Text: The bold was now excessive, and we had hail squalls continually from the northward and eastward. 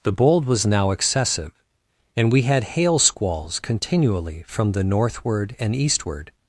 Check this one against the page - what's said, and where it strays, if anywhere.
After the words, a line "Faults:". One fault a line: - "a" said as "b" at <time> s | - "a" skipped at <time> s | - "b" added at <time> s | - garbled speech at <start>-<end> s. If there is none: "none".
The bold was now excessive, and we had hail squalls continually from the northward and eastward.
Faults:
none